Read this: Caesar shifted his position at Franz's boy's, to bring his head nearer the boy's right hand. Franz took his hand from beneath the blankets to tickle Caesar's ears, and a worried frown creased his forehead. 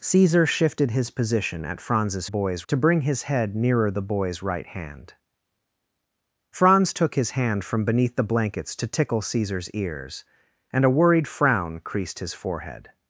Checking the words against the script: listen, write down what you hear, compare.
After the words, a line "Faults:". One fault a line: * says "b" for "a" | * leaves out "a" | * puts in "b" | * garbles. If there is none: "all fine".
Caesar shifted his position at Franz's boy's, to bring his head nearer the boy's right hand. Franz took his hand from beneath the blankets to tickle Caesar's ears, and a worried frown creased his forehead.
Faults:
all fine